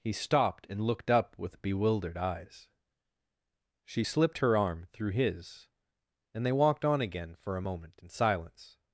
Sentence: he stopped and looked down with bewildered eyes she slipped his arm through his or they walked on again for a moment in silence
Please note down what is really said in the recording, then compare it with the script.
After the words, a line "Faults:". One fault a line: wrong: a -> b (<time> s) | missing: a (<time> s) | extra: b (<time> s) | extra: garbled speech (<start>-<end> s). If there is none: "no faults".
he stopped and looked up with bewildered eyes she slipped her arm through his and they walked on again for a moment in silence
Faults:
wrong: down -> up (1.1 s)
wrong: his -> her (4.4 s)
wrong: or -> and (6.4 s)